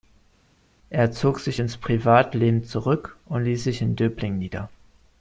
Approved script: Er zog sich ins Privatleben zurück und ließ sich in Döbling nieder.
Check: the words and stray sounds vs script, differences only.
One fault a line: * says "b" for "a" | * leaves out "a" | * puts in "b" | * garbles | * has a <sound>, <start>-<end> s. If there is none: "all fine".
all fine